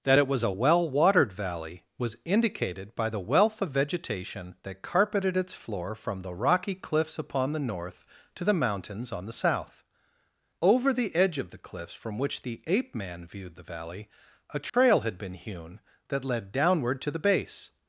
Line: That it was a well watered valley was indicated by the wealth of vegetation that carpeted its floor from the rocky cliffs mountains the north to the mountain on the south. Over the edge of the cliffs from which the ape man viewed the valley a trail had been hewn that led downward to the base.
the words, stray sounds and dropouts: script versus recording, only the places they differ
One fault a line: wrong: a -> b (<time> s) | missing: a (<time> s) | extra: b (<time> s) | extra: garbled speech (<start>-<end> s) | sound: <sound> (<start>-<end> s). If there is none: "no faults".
wrong: mountains -> upon (7.2 s)
wrong: mountain -> mountains (8.5 s)
sound: dropout (14.7-14.7 s)